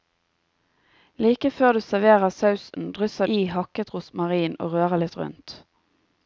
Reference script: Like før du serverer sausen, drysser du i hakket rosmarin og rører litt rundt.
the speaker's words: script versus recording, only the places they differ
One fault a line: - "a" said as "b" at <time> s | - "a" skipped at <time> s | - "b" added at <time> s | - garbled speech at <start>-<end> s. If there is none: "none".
- "du" skipped at 3.3 s